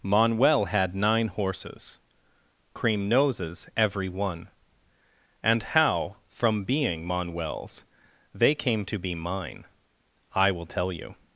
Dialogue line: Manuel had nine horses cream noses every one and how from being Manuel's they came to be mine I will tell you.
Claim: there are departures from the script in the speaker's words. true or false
false